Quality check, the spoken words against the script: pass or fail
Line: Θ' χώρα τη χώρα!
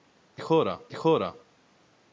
pass